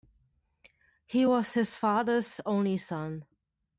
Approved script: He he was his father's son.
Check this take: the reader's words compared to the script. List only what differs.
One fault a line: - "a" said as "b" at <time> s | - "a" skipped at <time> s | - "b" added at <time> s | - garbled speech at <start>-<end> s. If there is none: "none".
- "he" skipped at 1.3 s
- "only" added at 2.5 s